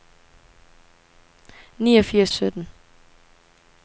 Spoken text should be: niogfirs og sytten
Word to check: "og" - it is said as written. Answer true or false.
true